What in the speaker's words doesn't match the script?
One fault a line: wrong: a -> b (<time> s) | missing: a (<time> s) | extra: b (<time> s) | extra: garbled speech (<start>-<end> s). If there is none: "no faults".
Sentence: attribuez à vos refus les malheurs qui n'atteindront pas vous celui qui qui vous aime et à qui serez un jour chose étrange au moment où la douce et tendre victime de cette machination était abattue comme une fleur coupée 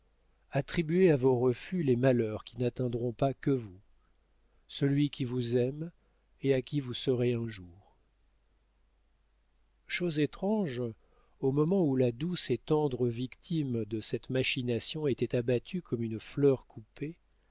extra: que (3.4 s)
missing: qui (5.2 s)
extra: vous (6.8 s)